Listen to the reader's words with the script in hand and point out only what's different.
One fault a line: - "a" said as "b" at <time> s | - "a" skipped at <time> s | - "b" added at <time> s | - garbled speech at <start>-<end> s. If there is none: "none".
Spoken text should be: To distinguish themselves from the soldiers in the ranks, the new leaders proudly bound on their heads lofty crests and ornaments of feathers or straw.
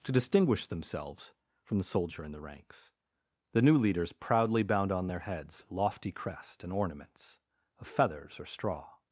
- "soldiers" said as "soldier" at 1.8 s
- "crests" said as "crest" at 6.1 s